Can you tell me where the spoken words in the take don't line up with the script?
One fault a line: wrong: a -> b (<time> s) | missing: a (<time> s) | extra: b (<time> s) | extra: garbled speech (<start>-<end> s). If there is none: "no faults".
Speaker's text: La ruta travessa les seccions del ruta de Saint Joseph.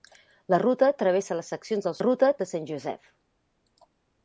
no faults